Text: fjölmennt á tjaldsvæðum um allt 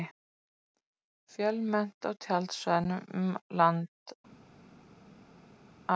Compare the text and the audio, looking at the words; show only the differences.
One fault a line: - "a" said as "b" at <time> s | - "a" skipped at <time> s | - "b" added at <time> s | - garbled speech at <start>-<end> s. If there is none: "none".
- "land" added at 3.6 s